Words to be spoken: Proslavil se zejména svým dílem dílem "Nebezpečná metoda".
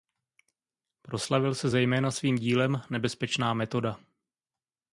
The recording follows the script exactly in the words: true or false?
false